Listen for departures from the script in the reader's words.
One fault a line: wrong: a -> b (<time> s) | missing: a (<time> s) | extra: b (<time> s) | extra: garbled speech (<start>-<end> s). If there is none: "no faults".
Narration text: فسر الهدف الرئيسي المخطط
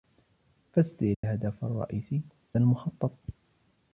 no faults